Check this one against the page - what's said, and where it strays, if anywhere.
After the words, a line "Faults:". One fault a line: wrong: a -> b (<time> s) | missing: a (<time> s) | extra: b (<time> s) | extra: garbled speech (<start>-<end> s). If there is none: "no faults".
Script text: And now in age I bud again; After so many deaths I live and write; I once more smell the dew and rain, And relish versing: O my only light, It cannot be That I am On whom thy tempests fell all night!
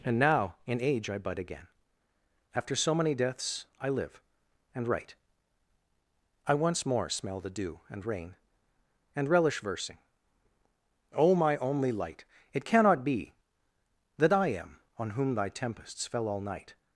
And now in age I bud again; After so many deaths I live and write; I once more smell the dew and rain, And relish versing: O my only light, It cannot be That I am On whom thy tempests fell all night!
Faults:
no faults